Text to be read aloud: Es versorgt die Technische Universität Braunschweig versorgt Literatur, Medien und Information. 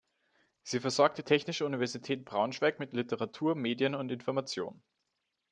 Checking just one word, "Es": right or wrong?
wrong